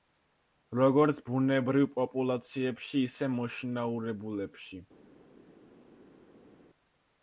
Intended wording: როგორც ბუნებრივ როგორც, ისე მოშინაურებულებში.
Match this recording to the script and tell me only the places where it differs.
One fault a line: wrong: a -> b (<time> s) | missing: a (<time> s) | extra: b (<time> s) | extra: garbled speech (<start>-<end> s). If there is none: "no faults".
wrong: როგორც -> პოპულაციებში (2.0 s)